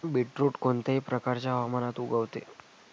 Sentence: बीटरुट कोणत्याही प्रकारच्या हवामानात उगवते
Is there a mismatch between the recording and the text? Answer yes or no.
no